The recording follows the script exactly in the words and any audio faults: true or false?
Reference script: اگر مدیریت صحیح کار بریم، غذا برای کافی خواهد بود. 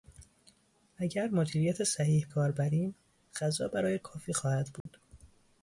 false